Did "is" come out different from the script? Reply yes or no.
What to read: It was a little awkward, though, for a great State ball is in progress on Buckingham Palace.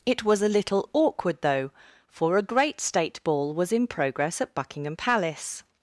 yes